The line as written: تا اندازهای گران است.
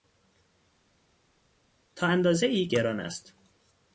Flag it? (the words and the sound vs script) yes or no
no